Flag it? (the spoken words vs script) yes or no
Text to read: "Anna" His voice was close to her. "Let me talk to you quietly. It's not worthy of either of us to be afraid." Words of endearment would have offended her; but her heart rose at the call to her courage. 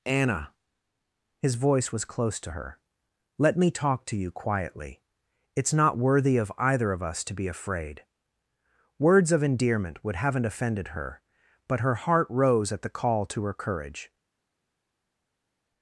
yes